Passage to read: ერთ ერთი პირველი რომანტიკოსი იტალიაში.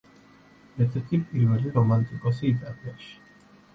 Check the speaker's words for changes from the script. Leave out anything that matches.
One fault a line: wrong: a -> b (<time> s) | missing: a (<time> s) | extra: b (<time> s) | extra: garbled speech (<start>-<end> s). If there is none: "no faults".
no faults